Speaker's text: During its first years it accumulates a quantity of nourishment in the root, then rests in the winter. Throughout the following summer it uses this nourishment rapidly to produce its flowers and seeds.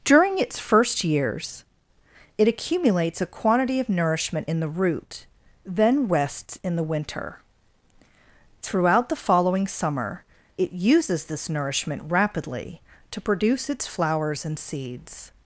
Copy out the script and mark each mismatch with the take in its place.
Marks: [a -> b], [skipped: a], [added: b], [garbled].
During its first years it accumulates a quantity of nourishment in the root, then rests in the winter. Throughout the following summer it uses this nourishment rapidly to produce its flowers and seeds.